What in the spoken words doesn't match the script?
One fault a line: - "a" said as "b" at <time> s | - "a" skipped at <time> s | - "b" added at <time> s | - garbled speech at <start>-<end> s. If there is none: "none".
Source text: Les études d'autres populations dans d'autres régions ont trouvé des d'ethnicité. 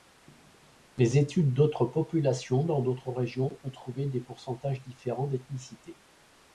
- "pourcentages différents" added at 4.2 s